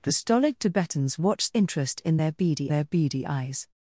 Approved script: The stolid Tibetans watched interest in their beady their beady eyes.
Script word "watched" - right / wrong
right